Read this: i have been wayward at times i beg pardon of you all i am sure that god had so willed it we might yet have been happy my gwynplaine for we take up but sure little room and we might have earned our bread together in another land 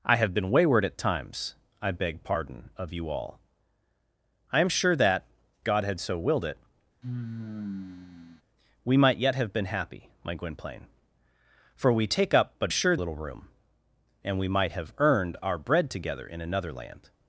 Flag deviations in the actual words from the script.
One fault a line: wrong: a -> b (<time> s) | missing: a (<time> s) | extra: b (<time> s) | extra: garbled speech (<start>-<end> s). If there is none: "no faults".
no faults